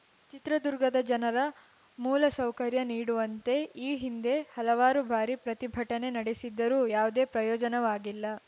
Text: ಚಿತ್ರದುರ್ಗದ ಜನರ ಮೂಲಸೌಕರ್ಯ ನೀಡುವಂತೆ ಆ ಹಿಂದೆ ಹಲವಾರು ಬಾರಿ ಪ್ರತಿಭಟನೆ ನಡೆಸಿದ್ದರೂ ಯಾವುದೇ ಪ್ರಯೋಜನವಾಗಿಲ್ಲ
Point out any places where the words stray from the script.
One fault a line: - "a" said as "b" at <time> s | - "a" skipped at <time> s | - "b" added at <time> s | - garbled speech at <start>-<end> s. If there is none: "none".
- "ಆ" said as "ಈ" at 3.8 s